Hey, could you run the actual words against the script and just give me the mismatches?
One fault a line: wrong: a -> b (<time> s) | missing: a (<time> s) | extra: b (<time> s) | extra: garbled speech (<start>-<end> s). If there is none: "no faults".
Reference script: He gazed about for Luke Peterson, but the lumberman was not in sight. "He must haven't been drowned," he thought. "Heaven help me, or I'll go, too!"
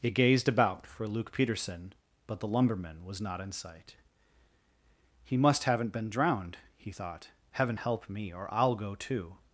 no faults